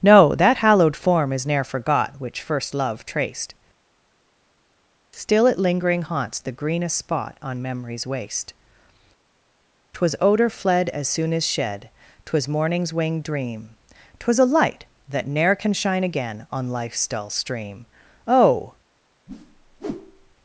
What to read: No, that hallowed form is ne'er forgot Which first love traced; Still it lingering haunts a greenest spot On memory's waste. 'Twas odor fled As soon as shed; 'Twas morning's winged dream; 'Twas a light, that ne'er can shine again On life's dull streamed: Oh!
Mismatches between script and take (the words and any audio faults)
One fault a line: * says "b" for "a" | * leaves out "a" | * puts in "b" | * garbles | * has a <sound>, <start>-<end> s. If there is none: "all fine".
* says "the" for "a"
* says "stream" for "streamed"
* has a whoosh, 19.3-20.4 s